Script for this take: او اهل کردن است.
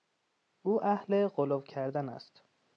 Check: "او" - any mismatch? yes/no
no